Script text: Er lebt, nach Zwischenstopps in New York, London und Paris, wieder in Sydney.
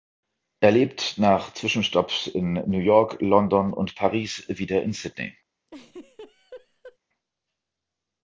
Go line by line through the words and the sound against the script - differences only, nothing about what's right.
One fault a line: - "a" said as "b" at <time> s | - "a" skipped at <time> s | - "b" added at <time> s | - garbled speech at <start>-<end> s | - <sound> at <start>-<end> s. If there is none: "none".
- laugh at 5.7-7.0 s